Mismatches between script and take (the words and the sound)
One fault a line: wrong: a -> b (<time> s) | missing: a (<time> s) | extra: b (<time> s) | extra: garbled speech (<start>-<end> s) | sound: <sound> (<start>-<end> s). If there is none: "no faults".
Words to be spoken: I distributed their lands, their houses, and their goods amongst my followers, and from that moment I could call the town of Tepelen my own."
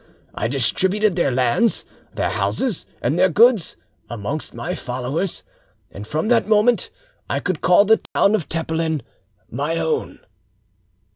sound: dropout (8.1-8.2 s)